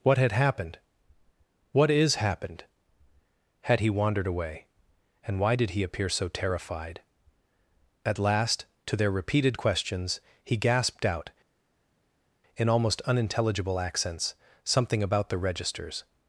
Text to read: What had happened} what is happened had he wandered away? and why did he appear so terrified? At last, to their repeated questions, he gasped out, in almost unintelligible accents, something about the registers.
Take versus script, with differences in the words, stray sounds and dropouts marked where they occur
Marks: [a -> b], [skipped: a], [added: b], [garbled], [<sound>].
What had happened} what is happened had he wandered away? and why did he appear so terrified? At last, to their repeated questions, he gasped out, in almost unintelligible accents, something about the registers.